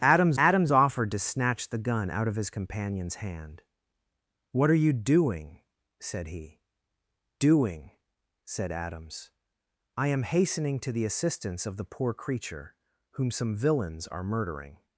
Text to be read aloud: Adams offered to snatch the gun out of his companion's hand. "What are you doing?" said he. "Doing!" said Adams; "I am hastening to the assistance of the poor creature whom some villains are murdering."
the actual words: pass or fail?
fail